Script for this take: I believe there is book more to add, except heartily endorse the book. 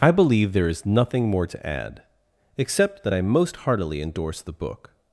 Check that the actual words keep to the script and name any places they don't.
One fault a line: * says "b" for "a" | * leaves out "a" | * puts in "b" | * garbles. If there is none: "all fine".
* says "nothing" for "book"
* puts in "that I most"